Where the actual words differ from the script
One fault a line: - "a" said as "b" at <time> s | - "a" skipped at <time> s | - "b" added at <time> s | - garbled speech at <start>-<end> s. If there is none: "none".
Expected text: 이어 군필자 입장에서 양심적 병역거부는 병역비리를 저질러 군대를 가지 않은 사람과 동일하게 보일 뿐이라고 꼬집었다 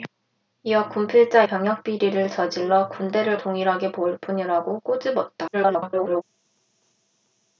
- "입장에서 양심적 병역거부는" skipped at 1.4 s
- "가지 않은 사람과" skipped at 3.4 s
- garbled speech at 5.5-6.2 s